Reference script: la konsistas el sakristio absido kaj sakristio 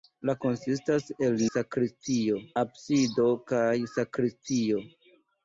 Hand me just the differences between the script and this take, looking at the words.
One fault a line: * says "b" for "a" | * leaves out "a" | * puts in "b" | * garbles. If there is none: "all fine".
all fine